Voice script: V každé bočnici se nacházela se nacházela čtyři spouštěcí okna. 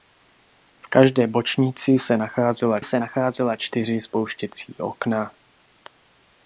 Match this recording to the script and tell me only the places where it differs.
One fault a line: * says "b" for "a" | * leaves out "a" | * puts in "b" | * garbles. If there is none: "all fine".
all fine